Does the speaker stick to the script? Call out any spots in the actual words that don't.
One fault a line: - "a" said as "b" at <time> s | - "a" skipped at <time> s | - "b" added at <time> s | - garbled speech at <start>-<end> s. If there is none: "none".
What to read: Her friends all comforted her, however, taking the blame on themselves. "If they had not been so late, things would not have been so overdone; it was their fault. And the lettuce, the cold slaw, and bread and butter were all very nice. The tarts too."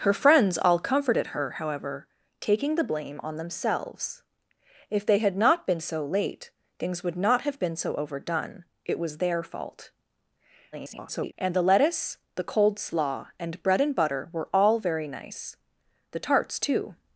- garbled speech at 10.7-11.3 s